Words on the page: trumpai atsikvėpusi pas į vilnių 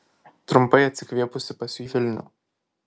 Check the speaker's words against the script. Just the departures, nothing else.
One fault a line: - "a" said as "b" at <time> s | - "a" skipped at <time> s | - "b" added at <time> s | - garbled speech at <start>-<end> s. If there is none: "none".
none